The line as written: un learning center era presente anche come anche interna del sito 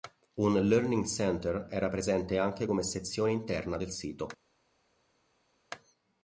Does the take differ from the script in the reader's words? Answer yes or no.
yes